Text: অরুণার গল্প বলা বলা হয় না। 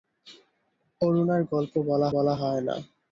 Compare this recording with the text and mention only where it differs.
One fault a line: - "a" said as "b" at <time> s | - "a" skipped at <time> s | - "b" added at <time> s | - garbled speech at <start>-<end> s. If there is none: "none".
none